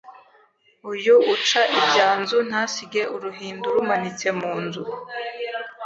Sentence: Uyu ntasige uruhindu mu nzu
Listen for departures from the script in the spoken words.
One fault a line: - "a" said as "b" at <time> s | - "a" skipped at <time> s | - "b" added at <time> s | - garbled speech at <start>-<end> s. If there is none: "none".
- "uca ibyanzu" added at 1.3 s
- "rumanitse" added at 3.8 s